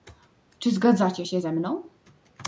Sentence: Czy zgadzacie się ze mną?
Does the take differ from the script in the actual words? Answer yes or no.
no